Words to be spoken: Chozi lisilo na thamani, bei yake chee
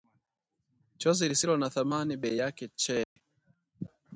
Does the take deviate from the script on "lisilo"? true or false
false